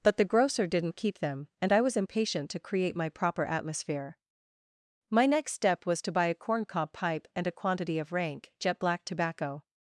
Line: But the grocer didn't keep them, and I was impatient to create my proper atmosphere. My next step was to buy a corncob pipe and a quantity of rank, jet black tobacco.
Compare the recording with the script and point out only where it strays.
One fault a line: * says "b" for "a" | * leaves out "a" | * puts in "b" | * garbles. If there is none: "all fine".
all fine